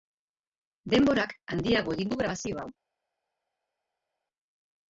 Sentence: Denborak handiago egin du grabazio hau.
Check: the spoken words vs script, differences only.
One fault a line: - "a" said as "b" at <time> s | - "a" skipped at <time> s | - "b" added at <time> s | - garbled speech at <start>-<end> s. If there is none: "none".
none